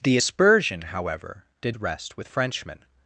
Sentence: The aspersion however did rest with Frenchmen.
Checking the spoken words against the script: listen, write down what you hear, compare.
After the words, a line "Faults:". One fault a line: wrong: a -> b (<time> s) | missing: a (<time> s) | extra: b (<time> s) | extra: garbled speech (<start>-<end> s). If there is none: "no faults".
The aspersion however did rest with Frenchmen.
Faults:
no faults